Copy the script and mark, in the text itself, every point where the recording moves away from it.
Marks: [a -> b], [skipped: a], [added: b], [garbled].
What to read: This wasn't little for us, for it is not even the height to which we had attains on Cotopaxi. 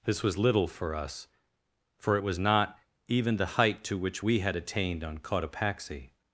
This [wasn't -> was] little for us, for it [is -> was] not even the height to which we had [attains -> attained] on Cotopaxi.